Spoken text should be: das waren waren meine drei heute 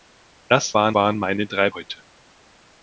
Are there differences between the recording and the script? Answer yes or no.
no